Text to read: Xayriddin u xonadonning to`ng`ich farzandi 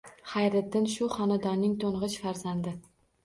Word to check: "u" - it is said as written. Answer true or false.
false